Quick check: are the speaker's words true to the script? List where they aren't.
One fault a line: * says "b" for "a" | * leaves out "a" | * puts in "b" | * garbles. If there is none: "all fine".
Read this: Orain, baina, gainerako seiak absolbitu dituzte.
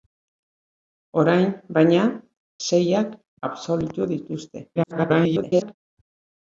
* leaves out "gainerako"
* garbles